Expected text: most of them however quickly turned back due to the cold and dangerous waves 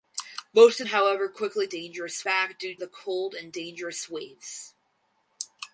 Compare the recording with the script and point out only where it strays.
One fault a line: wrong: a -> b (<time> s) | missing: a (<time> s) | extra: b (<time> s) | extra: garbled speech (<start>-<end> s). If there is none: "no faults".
missing: them (0.9 s)
wrong: turned -> dangerous (1.7 s)
missing: to (2.8 s)